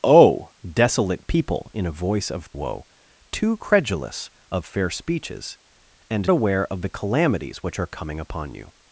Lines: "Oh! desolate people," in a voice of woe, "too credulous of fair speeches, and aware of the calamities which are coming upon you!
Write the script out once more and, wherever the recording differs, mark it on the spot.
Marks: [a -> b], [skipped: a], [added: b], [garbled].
"Oh! desolate people," in a voice of woe, "too credulous of fair speeches, and aware of the calamities which are coming upon you!